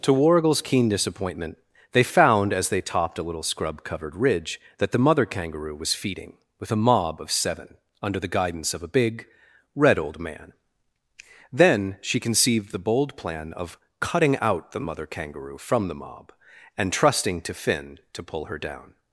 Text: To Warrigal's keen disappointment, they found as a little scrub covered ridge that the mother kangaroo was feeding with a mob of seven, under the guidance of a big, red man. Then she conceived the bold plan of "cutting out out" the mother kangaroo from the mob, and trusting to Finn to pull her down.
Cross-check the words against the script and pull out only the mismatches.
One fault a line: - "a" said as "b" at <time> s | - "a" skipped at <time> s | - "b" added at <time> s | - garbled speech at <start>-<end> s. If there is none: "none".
- "they topped" added at 2.7 s
- "old" added at 10.0 s
- "out" skipped at 14.7 s